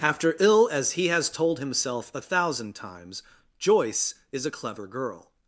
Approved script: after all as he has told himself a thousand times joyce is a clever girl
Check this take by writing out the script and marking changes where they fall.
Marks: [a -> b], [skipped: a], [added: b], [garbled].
after [all -> ill] as he has told himself a thousand times joyce is a clever girl